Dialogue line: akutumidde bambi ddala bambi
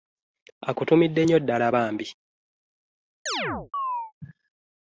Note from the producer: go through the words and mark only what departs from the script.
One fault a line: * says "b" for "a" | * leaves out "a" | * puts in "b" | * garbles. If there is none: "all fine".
* says "nnyo" for "bambi"